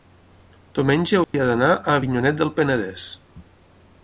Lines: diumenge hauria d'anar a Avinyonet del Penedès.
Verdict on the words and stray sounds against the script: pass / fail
fail